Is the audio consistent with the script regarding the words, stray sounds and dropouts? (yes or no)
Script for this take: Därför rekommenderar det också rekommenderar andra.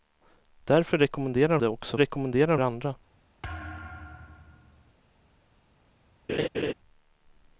no